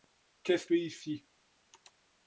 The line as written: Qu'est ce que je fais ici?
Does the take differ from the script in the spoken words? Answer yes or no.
yes